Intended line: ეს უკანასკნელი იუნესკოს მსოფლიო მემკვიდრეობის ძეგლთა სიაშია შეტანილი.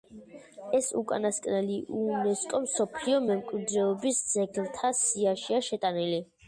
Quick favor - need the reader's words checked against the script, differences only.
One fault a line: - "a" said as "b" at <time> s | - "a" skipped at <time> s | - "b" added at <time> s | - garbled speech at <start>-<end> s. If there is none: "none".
none